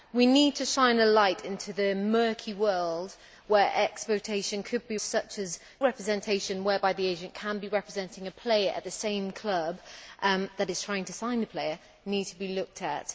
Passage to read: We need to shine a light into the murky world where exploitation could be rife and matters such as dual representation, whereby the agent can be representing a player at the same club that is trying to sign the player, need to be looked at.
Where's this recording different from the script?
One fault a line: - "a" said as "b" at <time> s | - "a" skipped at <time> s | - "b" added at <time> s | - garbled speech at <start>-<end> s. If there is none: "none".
- "rife and matters" skipped at 5.0 s
- "dual" skipped at 5.6 s